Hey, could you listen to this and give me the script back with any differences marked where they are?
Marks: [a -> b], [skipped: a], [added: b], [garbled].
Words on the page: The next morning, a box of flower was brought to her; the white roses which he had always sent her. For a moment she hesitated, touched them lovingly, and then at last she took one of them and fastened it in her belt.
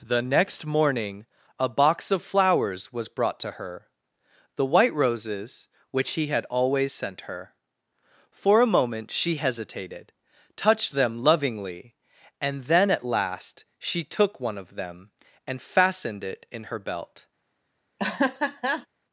The next morning, a box of [flower -> flowers] was brought to her; the white roses which he had always sent her. For a moment she hesitated, touched them lovingly, and then at last she took one of them and fastened it in her belt.